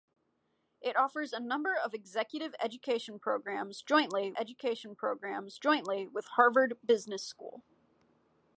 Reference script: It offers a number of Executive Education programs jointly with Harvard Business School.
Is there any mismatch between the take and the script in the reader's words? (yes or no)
yes